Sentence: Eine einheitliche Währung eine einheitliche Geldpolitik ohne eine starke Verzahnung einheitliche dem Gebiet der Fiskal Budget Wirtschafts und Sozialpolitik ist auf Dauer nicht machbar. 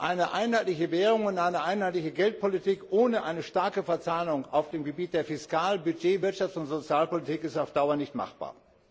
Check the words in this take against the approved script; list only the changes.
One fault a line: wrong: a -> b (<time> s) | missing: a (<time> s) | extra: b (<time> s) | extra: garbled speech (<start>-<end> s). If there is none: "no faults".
extra: und (1.3 s)
wrong: einheitliche -> auf (4.5 s)